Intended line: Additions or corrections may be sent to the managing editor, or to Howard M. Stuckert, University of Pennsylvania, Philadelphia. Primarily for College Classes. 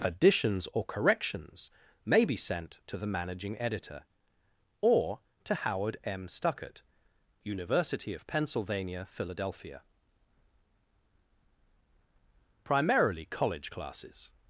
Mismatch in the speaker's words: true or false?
true